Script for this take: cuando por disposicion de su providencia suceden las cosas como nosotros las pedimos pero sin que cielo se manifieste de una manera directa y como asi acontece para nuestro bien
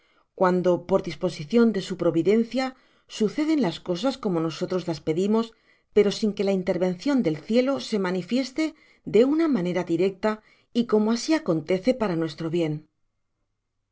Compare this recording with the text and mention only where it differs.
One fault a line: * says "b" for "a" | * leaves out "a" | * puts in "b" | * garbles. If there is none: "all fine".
* puts in "la intervencion del"